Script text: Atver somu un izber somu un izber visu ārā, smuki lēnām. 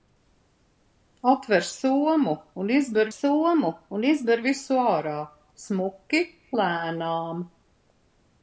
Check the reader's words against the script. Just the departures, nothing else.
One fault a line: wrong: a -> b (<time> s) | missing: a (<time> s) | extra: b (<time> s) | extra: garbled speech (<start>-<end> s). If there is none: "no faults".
no faults